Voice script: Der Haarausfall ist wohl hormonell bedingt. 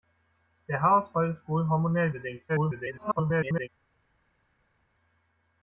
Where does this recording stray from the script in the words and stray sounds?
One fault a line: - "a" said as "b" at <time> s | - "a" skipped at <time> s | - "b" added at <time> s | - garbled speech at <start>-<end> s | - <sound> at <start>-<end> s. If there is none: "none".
- garbled speech at 2.5-3.7 s